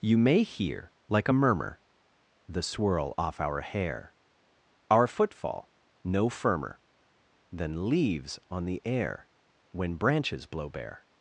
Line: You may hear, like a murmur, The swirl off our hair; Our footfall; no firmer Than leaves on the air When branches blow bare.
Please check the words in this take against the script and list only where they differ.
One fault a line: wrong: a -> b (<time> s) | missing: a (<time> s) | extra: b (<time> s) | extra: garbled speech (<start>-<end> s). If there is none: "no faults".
no faults